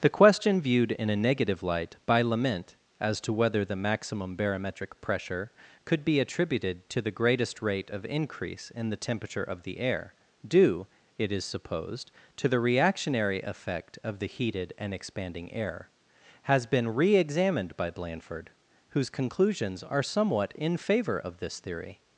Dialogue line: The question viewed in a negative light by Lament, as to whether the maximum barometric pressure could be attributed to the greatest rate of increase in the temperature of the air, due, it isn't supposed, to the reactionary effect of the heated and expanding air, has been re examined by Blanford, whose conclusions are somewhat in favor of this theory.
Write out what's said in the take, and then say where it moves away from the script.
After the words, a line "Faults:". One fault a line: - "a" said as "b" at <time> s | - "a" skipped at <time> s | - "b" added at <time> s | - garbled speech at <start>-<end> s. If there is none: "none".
The question viewed in a negative light by Lament, as to whether the maximum barometric pressure could be attributed to the greatest rate of increase in the temperature of the air, due, it is supposed, to the reactionary effect of the heated and expanding air, has been re examined by Blanford, whose conclusions are somewhat in favor of this theory.
Faults:
- "isn't" said as "is" at 11.3 s